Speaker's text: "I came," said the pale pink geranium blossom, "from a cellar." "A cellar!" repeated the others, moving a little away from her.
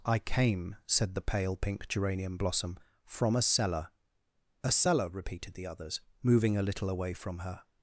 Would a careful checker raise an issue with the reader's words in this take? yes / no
no